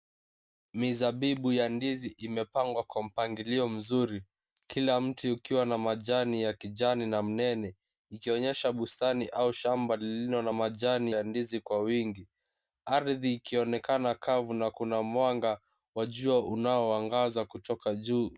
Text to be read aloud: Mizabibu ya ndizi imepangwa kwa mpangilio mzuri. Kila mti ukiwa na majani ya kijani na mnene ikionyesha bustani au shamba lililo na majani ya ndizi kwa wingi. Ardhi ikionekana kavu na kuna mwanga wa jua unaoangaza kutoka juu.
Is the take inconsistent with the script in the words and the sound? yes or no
no